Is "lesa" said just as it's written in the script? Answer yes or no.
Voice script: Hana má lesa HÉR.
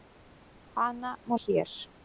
no